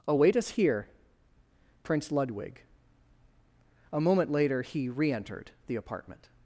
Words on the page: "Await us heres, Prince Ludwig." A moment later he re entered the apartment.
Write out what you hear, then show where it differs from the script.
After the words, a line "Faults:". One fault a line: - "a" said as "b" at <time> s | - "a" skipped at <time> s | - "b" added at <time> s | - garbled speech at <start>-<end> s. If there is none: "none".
"Await us here, Prince Ludwig." A moment later he re entered the apartment.
Faults:
- "heres" said as "here" at 0.5 s